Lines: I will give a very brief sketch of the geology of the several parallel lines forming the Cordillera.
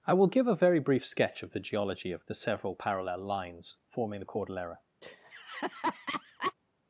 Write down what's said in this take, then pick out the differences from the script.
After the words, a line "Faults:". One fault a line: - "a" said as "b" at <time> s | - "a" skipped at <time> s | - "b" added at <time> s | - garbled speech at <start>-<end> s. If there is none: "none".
I will give a very brief sketch of the geology of the several parallel lines forming the Cordillera.
Faults:
none